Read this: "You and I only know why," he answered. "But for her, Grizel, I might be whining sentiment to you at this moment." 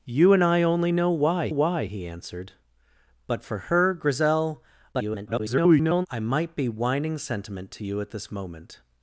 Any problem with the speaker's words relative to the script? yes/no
yes